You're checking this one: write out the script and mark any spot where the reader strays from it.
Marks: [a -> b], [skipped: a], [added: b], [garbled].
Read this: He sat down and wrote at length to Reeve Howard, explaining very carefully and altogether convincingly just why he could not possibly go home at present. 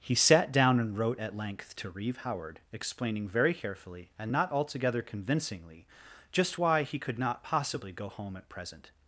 He sat down and wrote at length to Reeve Howard, explaining very carefully and [added: not] altogether convincingly just why he could not possibly go home at present.